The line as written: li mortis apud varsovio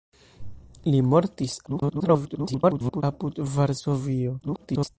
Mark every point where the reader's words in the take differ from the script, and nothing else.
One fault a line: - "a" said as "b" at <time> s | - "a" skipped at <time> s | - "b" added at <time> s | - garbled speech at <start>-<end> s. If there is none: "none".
- garbled speech at 1.7-3.0 s
- garbled speech at 4.4-4.9 s